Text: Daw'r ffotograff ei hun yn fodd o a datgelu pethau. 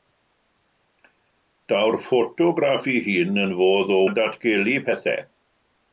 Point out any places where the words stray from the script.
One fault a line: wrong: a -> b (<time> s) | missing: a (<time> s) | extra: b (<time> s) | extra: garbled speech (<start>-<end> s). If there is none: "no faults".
no faults